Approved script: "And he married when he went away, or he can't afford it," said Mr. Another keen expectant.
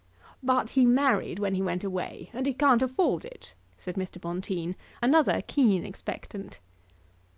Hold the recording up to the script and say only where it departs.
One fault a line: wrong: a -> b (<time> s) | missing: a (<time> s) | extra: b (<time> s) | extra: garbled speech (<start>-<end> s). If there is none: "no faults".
wrong: And -> But (0.4 s)
wrong: or -> and (2.3 s)
extra: Bonteen (4.2 s)